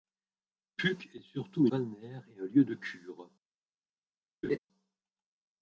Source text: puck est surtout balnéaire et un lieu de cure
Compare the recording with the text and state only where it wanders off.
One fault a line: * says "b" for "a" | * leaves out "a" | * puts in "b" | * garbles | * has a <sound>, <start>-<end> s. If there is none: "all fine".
* has a laugh, 4.4-4.6 s